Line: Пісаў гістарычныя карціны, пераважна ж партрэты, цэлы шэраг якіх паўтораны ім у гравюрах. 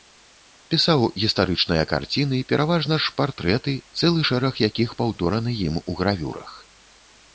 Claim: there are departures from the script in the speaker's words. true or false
false